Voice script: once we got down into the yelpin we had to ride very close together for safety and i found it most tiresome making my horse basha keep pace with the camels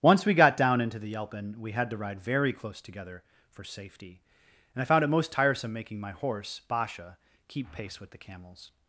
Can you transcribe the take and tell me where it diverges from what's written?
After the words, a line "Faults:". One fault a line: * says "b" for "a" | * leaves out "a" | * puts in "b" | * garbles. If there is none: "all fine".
once we got down into the yelpin we had to ride very close together for safety and i found it most tiresome making my horse basha keep pace with the camels
Faults:
all fine